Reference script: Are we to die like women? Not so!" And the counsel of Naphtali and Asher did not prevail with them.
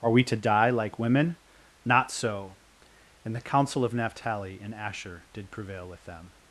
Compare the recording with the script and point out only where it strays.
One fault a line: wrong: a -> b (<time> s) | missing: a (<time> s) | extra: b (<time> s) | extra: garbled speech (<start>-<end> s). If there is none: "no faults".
missing: not (5.5 s)